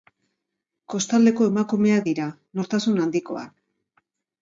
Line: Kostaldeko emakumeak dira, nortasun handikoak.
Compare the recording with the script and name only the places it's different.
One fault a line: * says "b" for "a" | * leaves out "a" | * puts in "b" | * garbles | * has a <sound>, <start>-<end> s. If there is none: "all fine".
all fine